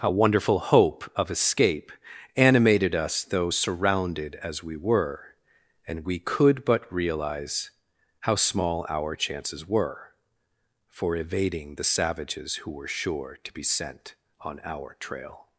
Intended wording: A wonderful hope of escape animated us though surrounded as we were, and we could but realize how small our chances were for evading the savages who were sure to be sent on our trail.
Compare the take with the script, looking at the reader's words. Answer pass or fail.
pass